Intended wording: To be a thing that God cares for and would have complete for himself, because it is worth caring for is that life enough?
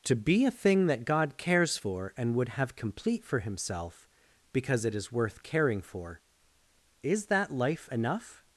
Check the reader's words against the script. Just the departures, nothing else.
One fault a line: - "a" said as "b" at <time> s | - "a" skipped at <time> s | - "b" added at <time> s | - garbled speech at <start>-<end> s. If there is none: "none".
none